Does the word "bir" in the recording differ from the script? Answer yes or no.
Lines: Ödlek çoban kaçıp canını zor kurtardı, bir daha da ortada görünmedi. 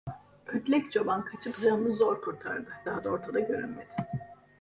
yes